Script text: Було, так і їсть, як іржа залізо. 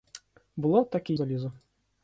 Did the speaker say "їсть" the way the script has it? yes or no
no